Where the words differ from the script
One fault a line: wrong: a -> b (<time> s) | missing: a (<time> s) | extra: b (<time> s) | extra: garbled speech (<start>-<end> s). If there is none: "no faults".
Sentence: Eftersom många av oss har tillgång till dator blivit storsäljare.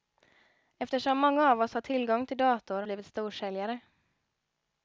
no faults